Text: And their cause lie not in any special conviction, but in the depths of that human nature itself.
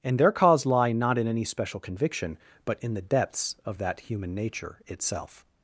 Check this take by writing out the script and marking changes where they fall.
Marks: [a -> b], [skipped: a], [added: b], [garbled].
And their cause lie not in any special conviction, but in the depths of that human nature itself.